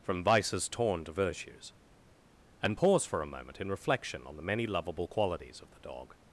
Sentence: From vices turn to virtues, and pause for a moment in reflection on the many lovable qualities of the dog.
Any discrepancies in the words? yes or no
yes